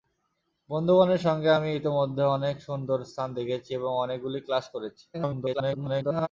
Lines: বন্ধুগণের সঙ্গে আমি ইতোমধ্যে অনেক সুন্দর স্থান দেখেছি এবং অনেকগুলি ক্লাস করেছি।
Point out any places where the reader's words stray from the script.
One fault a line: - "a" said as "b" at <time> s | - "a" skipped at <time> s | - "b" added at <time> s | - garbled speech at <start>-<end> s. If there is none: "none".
- garbled speech at 5.1-6.3 s